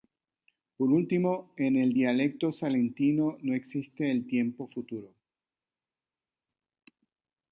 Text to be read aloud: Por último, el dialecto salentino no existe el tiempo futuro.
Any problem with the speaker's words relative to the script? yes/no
yes